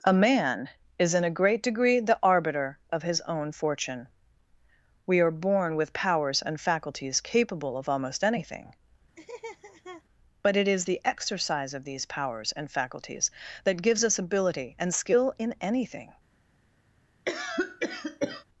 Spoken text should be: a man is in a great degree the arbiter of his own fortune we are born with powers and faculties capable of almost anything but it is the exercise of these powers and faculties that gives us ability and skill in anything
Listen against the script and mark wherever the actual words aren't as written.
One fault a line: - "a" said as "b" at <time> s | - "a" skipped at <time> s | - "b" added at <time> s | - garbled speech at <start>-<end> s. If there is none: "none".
none